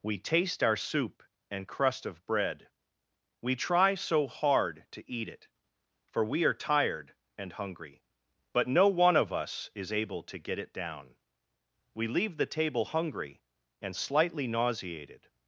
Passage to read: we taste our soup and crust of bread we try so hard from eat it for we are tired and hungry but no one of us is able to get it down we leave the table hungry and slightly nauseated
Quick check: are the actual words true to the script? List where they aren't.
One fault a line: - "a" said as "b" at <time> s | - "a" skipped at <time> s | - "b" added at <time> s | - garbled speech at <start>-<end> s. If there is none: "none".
- "from" said as "to" at 4.9 s